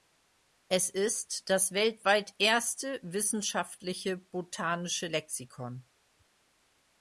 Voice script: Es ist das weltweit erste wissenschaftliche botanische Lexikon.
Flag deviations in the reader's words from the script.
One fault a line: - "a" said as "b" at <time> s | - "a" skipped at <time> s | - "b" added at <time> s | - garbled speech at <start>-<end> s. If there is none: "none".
none